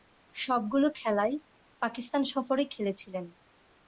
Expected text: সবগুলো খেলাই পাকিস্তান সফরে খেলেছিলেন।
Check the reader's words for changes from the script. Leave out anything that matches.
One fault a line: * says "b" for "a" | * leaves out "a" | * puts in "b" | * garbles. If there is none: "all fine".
all fine